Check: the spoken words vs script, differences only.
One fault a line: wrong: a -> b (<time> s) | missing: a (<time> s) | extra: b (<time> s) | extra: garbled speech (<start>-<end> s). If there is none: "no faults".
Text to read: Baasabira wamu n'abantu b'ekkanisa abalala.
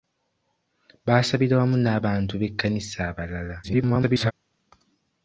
extra: garbled speech (3.6-4.3 s)